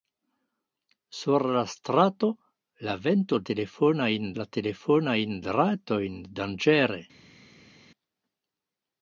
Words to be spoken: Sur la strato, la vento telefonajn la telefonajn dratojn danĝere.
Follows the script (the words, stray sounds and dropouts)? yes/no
yes